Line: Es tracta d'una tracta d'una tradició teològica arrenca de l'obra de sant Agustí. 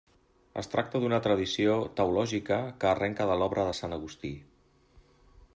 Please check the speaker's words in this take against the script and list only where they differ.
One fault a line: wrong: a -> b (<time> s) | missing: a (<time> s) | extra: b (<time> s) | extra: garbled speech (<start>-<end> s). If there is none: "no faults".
missing: tracta d'una (1.2 s)
extra: que (2.8 s)